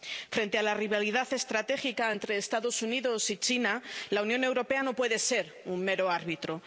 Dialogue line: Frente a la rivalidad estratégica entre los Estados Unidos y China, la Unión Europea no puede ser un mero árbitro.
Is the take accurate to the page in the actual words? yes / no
yes